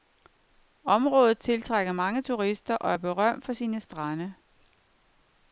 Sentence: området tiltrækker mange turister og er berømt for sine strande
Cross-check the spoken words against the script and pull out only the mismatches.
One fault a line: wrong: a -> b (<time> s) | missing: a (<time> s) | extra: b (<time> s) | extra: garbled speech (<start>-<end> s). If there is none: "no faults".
no faults